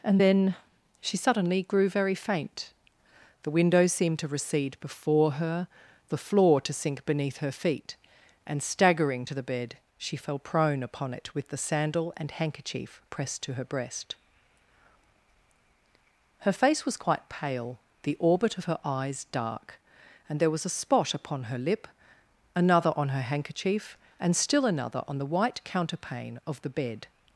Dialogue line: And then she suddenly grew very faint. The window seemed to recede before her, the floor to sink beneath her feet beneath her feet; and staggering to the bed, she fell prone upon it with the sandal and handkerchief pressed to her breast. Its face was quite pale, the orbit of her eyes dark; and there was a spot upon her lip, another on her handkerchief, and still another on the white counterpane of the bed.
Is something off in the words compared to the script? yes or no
yes